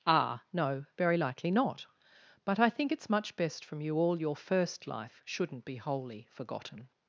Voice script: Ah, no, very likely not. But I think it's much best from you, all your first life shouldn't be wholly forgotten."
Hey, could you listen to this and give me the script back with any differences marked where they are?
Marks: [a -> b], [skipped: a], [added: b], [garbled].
Ah, no, very likely not. But I think it's much best from you, all your first life shouldn't be wholly forgotten."